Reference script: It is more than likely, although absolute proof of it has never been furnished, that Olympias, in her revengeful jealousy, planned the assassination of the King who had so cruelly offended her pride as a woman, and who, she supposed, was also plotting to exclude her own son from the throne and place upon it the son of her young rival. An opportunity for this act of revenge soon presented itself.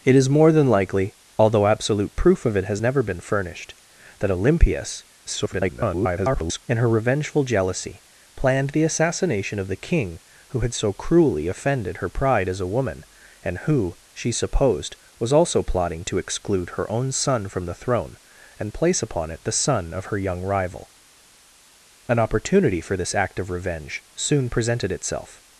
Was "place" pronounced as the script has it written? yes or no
yes